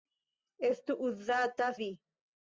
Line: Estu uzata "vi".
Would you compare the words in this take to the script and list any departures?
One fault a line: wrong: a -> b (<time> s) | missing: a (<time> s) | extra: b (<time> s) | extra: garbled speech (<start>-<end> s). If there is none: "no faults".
no faults